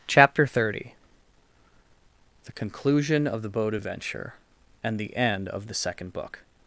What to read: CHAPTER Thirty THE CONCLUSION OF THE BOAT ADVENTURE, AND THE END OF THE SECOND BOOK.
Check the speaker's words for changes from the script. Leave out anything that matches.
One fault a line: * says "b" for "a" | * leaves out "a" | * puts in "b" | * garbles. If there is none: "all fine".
all fine